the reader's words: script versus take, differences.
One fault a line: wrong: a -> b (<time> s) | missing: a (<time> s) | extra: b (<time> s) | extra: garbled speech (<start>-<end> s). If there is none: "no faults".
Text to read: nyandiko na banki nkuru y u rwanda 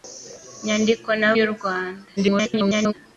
missing: banki nkuru (1.3 s)
extra: garbled speech (2.2-2.9 s)